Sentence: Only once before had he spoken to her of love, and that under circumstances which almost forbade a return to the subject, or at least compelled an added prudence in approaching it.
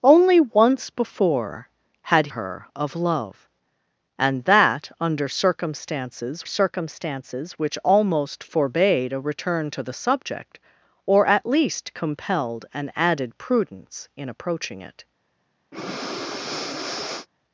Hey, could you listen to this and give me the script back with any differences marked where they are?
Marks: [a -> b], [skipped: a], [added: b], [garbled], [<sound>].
Only once before had [skipped: he spoken to] her of love, and that under circumstances [added: circumstances] which almost forbade a return to the subject, or at least compelled an added prudence in approaching it. [breath]